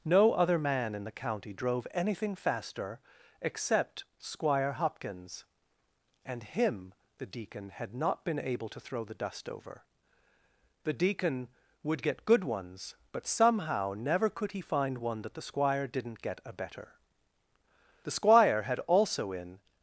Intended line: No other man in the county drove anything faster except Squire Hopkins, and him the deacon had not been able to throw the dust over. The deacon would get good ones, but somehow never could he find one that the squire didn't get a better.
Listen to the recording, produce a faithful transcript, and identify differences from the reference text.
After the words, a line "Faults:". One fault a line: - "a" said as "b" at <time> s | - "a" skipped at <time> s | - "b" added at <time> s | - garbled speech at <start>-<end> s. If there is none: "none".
No other man in the county drove anything faster except Squire Hopkins, and him the deacon had not been able to throw the dust over. The deacon would get good ones, but somehow never could he find one that the squire didn't get a better. The squire had also in
Faults:
- "The squire had also in" added at 18.0 s